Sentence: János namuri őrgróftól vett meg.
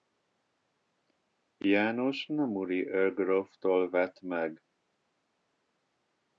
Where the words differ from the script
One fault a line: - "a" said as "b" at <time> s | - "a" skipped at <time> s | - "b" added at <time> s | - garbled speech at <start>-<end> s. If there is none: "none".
none